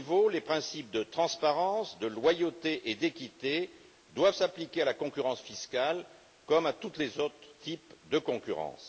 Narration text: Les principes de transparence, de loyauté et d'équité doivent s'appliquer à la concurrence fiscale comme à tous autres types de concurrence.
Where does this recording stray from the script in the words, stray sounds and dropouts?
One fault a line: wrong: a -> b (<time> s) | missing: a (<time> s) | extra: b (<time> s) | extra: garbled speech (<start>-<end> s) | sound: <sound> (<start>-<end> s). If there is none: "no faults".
extra: les (7.0 s)